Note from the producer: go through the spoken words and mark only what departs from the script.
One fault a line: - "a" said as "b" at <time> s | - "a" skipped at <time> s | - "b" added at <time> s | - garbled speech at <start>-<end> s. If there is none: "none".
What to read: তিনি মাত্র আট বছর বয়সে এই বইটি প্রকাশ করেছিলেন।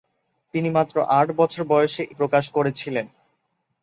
- "এই বইটি" skipped at 2.0 s